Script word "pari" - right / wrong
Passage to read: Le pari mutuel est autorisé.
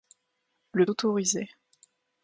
wrong